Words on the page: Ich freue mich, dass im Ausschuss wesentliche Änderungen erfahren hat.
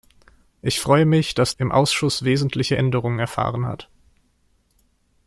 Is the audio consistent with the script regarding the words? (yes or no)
yes